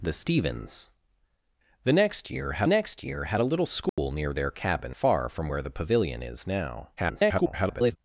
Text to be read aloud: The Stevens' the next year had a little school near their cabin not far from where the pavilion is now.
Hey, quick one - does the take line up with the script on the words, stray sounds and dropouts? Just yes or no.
no